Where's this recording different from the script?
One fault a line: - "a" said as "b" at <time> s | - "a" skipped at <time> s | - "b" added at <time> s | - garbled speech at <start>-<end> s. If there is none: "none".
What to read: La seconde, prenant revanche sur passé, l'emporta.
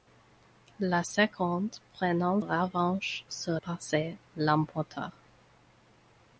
none